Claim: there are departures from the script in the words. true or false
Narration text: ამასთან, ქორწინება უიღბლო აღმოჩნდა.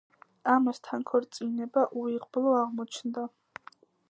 false